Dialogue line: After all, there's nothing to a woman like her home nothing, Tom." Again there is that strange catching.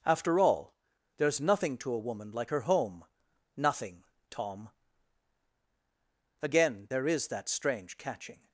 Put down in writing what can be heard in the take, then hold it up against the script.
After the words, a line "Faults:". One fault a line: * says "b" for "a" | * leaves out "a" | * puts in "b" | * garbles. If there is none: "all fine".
After all, there's nothing to a woman like her home nothing, Tom." Again there is that strange catching.
Faults:
all fine